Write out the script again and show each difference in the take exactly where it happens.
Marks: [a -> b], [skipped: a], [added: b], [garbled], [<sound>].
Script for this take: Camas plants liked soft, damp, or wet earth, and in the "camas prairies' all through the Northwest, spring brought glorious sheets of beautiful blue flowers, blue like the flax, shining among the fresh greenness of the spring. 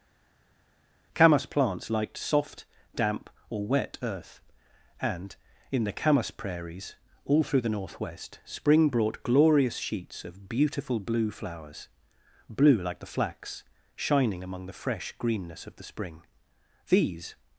Camas plants liked soft, damp, or wet earth, and in the "camas prairies' all through the Northwest, spring brought glorious sheets of beautiful blue flowers, blue like the flax, shining among the fresh greenness of the spring. [added: These]